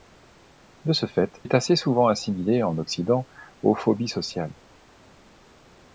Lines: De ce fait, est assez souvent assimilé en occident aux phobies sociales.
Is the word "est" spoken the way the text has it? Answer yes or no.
yes